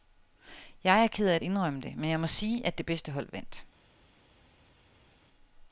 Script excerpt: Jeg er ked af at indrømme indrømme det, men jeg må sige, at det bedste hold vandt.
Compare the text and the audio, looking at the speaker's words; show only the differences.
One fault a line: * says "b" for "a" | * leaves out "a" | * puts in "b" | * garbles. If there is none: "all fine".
* leaves out "indrømme"